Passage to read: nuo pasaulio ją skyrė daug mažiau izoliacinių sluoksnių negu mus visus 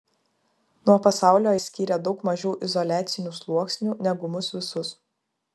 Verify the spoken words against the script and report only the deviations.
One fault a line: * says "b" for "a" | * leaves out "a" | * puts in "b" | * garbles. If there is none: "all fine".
* leaves out "ją"